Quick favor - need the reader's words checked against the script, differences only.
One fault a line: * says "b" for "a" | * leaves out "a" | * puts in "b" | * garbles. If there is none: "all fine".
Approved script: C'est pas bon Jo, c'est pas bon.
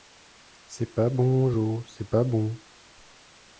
all fine